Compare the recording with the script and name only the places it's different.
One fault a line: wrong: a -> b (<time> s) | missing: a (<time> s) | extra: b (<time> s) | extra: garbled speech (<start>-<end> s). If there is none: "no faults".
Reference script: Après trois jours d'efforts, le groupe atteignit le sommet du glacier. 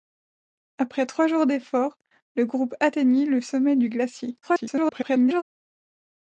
extra: garbled speech (4.4-5.4 s)